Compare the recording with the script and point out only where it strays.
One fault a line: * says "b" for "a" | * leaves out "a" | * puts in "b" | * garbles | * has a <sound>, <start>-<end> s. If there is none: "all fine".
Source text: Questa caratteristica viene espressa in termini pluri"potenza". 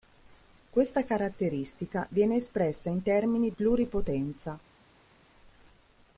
all fine